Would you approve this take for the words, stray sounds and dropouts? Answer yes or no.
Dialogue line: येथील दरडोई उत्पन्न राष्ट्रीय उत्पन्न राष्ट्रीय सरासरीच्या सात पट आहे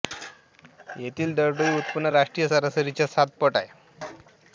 no